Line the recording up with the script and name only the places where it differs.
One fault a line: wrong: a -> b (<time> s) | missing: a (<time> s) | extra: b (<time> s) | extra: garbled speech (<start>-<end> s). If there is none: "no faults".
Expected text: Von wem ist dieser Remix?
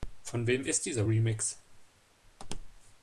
no faults